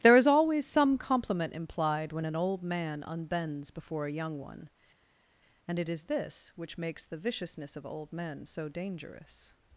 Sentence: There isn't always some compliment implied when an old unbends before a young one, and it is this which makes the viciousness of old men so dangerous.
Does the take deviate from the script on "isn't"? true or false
true